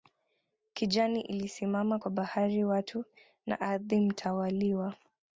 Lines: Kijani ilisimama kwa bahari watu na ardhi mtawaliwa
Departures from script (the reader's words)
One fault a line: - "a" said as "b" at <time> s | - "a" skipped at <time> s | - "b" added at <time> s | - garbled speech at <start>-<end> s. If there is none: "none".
none